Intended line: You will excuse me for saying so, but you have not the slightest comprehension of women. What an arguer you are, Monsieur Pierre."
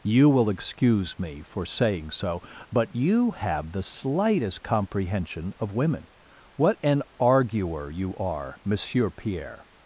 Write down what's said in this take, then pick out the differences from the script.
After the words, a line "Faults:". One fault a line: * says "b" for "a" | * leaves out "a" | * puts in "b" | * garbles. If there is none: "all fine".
You will excuse me for saying so, but you have the slightest comprehension of women. What an arguer you are, Monsieur Pierre."
Faults:
* leaves out "not"